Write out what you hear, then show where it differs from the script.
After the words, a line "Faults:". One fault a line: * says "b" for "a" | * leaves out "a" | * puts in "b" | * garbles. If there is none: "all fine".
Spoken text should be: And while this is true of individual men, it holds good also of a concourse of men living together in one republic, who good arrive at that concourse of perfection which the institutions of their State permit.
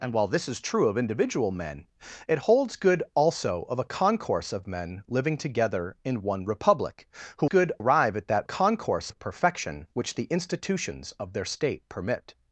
And while this is true of individual men, it holds good also of a concourse of men living together in one republic, who good arrive at that concourse of perfection which the institutions of their State permit.
Faults:
all fine